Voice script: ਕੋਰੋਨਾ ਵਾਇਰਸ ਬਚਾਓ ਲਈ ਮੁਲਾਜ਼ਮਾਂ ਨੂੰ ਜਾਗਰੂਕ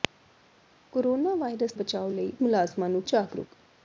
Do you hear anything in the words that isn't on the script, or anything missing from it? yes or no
no